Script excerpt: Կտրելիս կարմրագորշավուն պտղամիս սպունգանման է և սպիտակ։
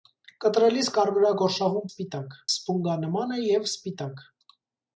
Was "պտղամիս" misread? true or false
true